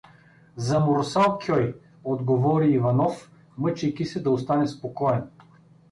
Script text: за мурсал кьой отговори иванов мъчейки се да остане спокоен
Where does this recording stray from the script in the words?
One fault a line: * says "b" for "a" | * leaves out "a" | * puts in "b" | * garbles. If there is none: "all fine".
all fine